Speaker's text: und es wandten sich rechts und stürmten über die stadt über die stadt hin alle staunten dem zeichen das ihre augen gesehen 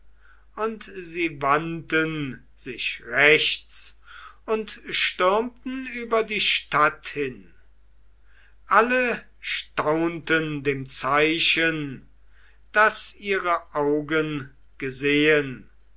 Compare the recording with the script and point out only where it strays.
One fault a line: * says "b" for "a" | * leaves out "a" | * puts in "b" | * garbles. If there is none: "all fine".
* says "sie" for "es"
* leaves out "über die stadt"